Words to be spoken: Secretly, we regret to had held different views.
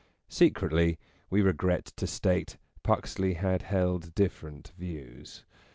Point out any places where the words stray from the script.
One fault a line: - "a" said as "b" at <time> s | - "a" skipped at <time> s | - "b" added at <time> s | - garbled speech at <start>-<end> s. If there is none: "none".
- "state Puxley" added at 2.1 s